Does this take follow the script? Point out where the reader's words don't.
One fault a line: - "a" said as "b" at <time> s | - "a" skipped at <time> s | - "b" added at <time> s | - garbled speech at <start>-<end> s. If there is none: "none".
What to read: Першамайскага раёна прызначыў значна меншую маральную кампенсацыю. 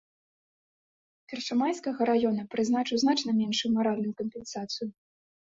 none